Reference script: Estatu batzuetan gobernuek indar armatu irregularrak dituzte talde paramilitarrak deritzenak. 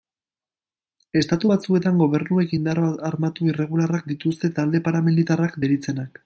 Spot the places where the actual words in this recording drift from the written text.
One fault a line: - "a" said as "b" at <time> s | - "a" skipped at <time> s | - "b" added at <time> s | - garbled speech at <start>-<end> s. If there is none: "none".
none